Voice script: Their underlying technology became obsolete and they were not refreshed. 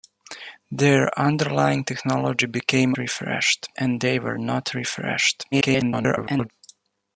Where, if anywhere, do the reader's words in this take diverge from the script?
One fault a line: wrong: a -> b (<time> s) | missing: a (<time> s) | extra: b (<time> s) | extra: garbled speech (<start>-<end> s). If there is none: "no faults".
wrong: obsolete -> refreshed (3.0 s)
extra: garbled speech (5.5-6.5 s)